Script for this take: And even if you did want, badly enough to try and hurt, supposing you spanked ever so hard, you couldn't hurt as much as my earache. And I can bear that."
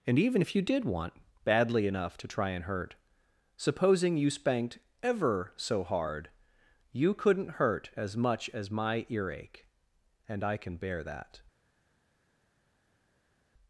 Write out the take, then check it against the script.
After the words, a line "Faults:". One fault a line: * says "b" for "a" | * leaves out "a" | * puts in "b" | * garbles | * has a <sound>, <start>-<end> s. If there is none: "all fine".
And even if you did want, badly enough to try and hurt, supposing you spanked ever so hard, you couldn't hurt as much as my earache. And I can bear that."
Faults:
all fine